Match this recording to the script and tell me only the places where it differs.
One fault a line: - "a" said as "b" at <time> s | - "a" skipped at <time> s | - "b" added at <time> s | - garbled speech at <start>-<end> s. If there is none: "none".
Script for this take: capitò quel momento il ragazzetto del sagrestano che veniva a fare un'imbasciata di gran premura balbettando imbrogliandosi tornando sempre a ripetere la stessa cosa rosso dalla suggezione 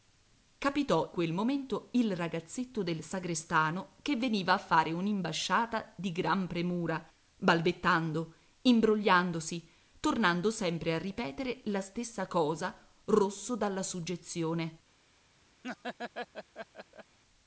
none